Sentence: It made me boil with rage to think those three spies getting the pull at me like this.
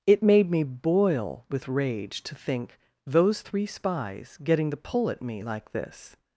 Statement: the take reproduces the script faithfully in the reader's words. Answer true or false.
true